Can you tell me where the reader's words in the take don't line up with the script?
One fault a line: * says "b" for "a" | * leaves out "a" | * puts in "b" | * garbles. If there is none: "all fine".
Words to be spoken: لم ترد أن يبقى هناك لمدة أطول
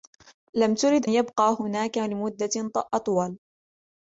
* leaves out "أن"